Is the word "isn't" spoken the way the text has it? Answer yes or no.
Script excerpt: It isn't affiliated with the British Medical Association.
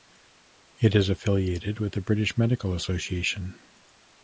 no